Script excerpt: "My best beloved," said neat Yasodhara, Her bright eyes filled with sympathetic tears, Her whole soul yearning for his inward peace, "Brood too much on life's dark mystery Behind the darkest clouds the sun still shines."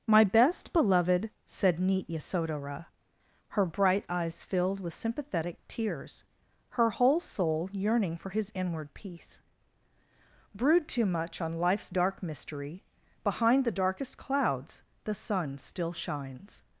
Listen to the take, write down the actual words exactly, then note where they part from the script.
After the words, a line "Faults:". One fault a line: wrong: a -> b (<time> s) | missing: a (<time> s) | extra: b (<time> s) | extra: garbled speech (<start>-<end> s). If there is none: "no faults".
"My best beloved," said neat Yasodhara, Her bright eyes filled with sympathetic tears, Her whole soul yearning for his inward peace, "Brood too much on life's dark mystery Behind the darkest clouds the sun still shines."
Faults:
no faults